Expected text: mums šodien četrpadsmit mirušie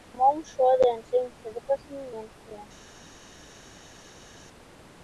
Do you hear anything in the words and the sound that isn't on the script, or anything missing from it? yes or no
yes